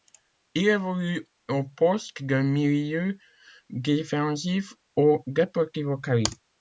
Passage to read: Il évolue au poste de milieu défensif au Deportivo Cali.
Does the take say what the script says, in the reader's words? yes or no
yes